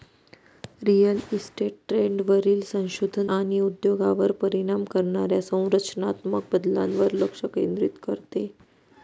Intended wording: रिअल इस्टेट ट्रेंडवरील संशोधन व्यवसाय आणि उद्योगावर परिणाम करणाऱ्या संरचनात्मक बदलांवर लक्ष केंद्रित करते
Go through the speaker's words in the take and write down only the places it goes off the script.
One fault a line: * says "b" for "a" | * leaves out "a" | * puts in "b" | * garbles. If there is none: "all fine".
* leaves out "व्यवसाय"